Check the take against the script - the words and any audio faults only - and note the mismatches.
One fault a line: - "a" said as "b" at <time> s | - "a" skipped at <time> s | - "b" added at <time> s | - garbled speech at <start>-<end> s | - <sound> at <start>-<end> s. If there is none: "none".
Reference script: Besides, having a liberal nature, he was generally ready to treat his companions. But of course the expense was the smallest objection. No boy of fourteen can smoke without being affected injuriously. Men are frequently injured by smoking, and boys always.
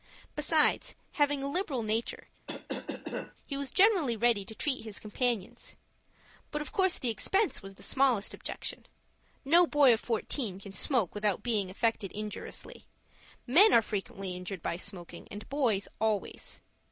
- cough at 2.5-3.3 s